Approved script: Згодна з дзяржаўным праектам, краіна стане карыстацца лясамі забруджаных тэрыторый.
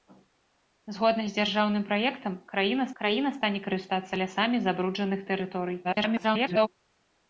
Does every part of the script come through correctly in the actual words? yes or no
no